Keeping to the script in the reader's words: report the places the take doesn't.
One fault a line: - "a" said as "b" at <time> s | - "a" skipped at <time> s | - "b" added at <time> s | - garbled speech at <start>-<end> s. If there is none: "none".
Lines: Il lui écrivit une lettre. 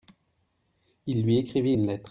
none